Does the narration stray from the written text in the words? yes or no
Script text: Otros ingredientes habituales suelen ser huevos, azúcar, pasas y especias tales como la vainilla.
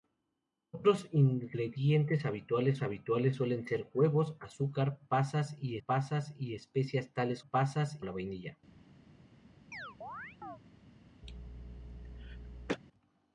yes